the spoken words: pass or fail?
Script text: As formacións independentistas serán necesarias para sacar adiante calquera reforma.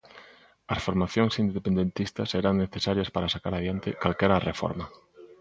pass